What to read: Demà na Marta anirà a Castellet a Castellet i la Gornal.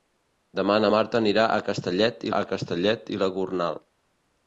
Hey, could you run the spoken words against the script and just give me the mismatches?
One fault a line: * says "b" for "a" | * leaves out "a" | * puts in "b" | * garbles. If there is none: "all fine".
all fine